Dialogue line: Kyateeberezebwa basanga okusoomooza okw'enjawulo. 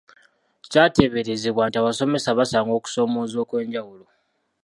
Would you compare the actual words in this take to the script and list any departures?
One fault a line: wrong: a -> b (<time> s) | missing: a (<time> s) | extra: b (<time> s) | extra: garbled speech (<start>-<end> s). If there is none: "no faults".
extra: nti abasomesa (1.7 s)